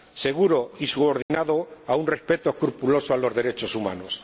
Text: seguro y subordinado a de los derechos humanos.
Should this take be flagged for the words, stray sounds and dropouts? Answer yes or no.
yes